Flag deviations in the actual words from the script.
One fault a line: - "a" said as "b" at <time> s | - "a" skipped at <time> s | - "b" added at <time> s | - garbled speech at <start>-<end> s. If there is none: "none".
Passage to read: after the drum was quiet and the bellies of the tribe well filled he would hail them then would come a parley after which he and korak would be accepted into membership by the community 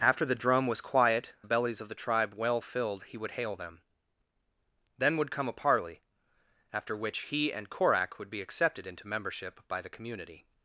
- "and" skipped at 1.3 s